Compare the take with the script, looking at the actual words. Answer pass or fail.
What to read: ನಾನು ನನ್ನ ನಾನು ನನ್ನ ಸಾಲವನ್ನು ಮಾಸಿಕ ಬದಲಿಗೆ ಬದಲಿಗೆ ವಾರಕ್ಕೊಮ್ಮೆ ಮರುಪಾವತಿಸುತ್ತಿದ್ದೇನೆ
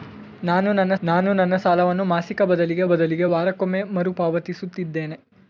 pass